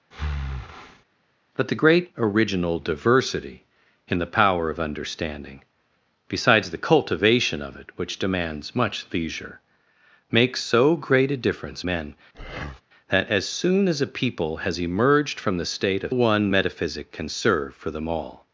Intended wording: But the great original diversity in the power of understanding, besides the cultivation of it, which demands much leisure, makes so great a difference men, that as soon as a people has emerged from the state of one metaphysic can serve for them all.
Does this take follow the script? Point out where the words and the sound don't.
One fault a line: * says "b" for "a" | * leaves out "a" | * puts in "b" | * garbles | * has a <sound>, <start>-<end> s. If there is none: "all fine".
* has a breath, 0.1-1.0 s
* has a breath, 12.3-12.8 s